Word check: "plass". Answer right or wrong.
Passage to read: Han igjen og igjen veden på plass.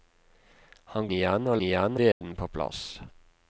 right